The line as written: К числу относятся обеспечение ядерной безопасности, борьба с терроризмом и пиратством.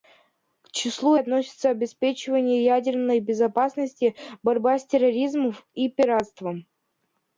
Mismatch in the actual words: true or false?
false